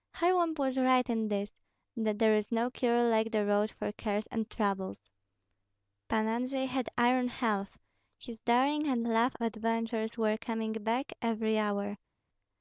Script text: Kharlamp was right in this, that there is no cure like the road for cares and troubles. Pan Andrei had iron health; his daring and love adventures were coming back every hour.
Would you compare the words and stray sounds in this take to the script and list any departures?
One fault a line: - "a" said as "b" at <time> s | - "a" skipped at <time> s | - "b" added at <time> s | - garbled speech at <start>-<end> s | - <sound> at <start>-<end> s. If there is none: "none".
none